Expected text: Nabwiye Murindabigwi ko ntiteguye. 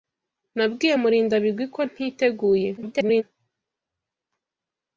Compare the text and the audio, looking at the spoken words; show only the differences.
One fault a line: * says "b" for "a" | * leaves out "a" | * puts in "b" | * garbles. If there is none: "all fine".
* garbles